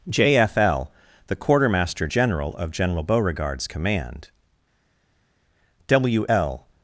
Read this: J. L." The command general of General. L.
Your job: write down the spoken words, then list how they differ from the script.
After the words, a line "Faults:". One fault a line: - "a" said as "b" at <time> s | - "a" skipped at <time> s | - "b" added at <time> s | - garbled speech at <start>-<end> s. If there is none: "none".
J. F. L." The quartermaster general of General Beauregard's command, W. L.
Faults:
- "F" added at 0.4 s
- "command" said as "quartermaster" at 1.4 s
- "Beauregard's command W" added at 3.0 s